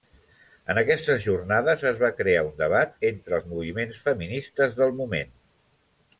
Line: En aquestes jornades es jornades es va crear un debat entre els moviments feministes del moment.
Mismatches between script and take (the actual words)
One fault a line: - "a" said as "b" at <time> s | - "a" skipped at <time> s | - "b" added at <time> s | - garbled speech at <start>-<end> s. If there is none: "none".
- "jornades es" skipped at 2.0 s